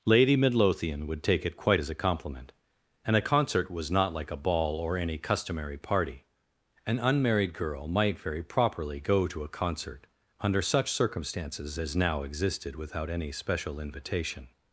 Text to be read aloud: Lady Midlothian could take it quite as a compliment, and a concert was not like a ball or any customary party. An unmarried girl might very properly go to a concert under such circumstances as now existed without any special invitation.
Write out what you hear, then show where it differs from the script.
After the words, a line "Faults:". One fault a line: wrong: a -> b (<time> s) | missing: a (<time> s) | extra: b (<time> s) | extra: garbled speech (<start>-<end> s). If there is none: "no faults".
Lady Midlothian would take it quite as a compliment, and a concert was not like a ball or any customary party. An unmarried girl might very properly go to a concert under such circumstances as now existed without any special invitation.
Faults:
wrong: could -> would (1.1 s)